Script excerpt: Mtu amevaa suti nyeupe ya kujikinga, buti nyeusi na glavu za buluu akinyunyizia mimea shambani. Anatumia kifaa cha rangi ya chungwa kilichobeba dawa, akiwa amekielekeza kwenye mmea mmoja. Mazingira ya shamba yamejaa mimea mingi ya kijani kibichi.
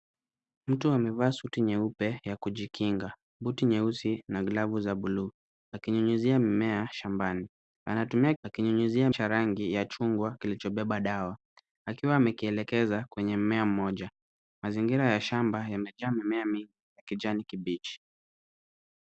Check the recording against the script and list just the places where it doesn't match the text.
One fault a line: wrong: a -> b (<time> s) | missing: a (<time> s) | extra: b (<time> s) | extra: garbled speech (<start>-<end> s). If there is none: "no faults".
wrong: kifaa -> akinyunyizia (8.4 s)